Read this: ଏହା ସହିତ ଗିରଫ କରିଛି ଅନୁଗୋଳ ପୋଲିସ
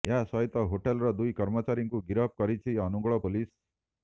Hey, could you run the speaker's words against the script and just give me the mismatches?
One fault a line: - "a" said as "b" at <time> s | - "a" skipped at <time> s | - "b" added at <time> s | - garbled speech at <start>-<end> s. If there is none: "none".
- "ହୋଟେଲର ଦୁଇ କର୍ମଚାରୀଙ୍କୁ" added at 0.7 s